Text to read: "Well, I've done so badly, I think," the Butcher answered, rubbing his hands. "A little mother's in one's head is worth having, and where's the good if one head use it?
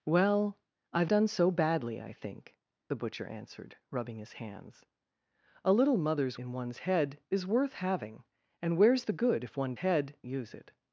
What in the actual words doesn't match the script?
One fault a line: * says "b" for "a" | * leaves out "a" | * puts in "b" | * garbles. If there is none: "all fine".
all fine